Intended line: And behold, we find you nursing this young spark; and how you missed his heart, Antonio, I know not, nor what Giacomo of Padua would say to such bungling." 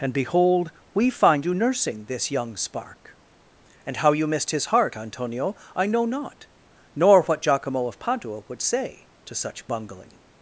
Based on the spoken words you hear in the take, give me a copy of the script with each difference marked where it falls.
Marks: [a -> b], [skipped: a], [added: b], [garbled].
And behold, we find you nursing this young spark; and how you missed his heart, Antonio, I know not, nor what Giacomo of Padua would say to such bungling."